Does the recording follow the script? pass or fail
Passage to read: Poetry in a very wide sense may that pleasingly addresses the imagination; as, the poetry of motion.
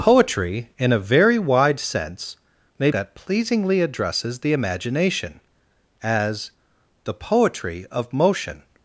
pass